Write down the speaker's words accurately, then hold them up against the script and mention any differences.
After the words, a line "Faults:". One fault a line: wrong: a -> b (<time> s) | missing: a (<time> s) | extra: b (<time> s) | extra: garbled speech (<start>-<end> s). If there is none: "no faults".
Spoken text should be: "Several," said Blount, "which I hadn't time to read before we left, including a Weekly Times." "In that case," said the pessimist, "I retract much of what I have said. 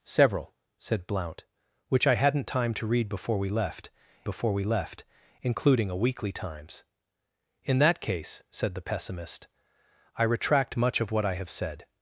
"Several," said Blount, "which I hadn't time to read before we left before we left, including a Weekly Times." "In that case," said the pessimist, "I retract much of what I have said.
Faults:
extra: before we left (4.2 s)